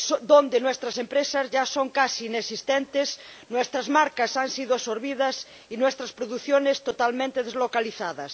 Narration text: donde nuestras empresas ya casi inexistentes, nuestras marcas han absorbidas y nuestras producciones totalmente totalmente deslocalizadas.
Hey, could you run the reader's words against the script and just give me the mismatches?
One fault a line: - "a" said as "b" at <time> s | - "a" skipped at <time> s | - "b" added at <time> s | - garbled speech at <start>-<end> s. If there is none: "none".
- "son" added at 1.6 s
- "sido" added at 4.5 s
- "totalmente" skipped at 7.4 s